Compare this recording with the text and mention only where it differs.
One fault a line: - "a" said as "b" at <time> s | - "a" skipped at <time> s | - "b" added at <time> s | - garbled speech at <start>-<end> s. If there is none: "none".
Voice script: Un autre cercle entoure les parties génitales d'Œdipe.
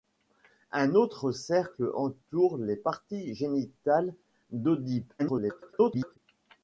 - garbled speech at 5.2-6.2 s